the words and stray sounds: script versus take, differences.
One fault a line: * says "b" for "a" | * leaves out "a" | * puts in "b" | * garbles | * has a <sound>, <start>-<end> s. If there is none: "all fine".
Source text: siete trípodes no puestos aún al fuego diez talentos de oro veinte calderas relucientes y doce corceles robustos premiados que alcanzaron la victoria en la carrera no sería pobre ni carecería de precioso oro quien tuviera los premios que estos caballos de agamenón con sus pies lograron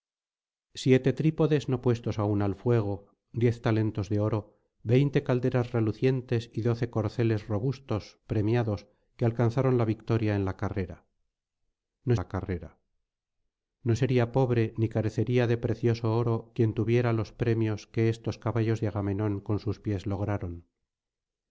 * puts in "la carrera no"